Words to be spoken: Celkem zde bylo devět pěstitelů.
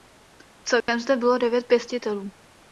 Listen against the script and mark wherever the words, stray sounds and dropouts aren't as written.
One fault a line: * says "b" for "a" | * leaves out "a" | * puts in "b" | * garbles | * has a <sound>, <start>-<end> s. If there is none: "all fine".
* has a dropout, 0.8-0.9 s